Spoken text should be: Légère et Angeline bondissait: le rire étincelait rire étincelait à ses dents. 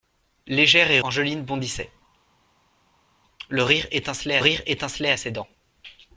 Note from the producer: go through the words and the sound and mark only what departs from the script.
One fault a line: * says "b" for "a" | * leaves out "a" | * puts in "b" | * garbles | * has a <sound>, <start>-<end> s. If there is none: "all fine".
all fine